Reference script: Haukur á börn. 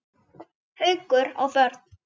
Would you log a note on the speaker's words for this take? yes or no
no